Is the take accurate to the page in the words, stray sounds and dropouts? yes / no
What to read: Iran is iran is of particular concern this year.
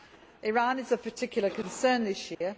no